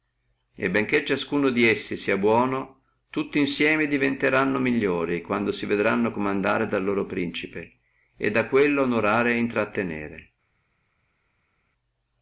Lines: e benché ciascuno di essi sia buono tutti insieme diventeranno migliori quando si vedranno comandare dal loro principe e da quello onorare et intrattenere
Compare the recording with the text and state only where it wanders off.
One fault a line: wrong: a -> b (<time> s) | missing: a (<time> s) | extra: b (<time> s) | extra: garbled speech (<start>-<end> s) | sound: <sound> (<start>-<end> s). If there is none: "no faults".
no faults